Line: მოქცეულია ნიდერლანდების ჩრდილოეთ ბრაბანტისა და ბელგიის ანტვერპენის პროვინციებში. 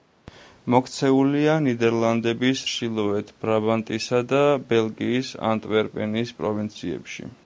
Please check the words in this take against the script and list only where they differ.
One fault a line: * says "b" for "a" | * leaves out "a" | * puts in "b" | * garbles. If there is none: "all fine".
all fine